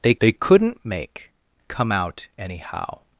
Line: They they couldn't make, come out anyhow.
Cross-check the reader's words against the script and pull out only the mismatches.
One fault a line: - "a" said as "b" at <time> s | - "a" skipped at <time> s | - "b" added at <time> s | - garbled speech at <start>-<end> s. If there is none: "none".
none